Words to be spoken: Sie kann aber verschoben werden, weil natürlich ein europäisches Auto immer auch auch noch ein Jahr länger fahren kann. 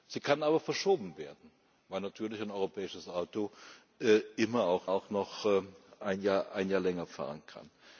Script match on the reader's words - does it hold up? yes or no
yes